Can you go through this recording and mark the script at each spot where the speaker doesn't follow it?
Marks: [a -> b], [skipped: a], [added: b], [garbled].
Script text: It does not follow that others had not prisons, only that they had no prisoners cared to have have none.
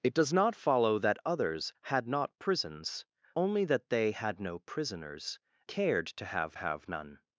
It does not follow that others had not prisons, only that they had no prisoners cared to have have none.